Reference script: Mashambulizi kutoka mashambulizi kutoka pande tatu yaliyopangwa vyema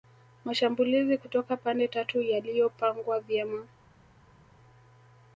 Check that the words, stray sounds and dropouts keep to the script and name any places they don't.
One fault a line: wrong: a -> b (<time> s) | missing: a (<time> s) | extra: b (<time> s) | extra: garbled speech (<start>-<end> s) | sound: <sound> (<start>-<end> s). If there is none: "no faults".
missing: mashambulizi kutoka (1.6 s)